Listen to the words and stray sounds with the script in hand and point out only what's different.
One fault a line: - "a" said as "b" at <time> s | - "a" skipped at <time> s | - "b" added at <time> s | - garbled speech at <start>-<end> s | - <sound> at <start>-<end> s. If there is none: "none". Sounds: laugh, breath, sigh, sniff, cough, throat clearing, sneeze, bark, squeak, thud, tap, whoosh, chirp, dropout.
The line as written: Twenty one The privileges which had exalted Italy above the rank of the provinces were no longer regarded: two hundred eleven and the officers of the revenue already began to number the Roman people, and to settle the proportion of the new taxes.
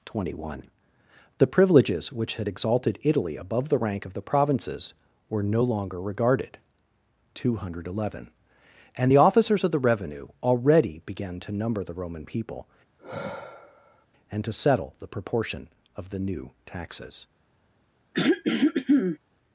- sigh at 13.0-14.1 s
- throat clearing at 18.1-19.2 s